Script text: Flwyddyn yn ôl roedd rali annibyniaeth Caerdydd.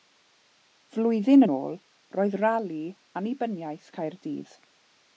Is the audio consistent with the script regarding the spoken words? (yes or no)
yes